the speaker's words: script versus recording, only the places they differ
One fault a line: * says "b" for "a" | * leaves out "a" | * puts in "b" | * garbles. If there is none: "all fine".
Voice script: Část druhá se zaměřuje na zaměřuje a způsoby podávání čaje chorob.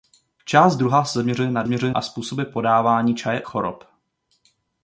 all fine